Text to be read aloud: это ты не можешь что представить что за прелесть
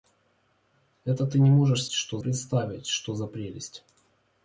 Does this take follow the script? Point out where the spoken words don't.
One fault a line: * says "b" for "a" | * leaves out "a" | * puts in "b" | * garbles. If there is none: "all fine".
all fine